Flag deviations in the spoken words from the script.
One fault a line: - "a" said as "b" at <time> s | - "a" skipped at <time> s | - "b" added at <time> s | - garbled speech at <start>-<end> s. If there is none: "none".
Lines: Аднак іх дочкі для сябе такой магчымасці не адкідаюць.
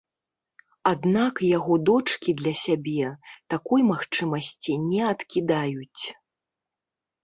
- "іх" said as "яго" at 1.6 s